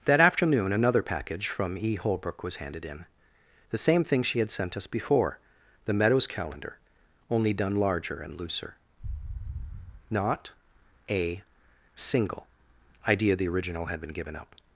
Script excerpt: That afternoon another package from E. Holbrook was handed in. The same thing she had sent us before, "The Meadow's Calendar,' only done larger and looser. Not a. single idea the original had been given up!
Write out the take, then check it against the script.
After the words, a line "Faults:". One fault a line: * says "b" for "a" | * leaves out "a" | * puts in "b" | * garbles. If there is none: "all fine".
That afternoon another package from E. Holbrook was handed in. The same thing she had sent us before, "The Meadow's Calendar,' only done larger and looser. Not a. single idea the original had been given up!
Faults:
all fine